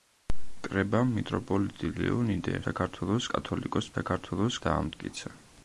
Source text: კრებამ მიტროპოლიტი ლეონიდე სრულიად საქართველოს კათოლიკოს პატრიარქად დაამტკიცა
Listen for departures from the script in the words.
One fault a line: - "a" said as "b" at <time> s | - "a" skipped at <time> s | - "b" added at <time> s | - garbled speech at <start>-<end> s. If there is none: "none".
- "სრულიად" skipped at 2.5 s
- "პატრიარქად" said as "საქართველოს" at 3.9 s